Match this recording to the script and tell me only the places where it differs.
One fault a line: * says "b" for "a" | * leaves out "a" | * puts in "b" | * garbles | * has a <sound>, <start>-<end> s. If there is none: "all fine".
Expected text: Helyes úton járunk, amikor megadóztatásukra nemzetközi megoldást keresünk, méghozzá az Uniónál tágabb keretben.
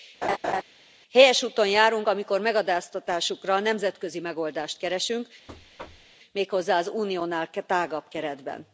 * has a laugh, 0.2-0.6 s
* has a thud, 5.5-6.2 s